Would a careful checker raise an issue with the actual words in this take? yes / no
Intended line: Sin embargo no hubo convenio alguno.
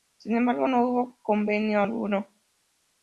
no